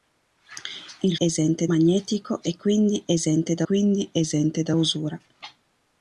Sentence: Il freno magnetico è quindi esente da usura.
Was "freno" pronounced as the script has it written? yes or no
no